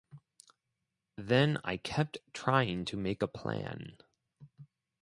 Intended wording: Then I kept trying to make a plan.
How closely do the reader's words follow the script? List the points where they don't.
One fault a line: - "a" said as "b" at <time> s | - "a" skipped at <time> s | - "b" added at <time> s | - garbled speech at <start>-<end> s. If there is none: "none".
none